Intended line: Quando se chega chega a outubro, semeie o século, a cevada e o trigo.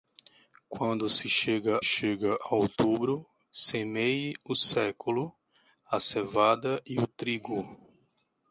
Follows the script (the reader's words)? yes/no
yes